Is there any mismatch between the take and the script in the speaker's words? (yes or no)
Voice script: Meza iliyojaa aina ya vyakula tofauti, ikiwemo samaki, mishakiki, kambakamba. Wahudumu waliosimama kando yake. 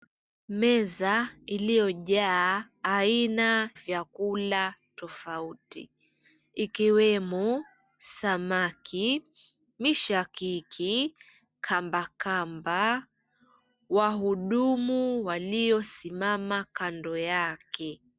yes